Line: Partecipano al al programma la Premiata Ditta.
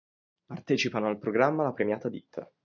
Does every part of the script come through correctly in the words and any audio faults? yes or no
no